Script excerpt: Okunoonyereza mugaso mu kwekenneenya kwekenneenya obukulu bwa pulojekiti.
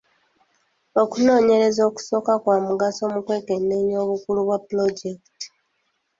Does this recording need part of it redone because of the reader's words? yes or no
yes